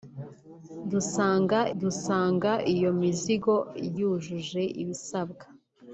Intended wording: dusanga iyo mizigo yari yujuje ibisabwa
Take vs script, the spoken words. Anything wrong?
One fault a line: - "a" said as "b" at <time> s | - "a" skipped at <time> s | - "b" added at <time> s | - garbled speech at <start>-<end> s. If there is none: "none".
- "dusanga" added at 1.8 s
- "yari" skipped at 3.5 s